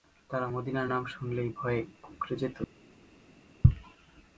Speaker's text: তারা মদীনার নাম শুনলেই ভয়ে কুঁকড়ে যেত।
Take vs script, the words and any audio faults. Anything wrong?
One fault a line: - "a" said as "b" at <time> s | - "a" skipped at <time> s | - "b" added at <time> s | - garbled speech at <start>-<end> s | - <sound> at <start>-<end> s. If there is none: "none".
none